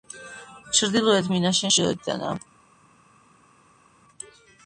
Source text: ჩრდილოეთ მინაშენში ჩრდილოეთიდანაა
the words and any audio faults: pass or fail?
pass